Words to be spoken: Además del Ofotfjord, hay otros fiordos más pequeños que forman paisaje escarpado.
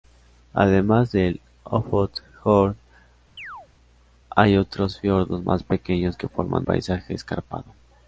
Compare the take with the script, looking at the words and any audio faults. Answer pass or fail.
fail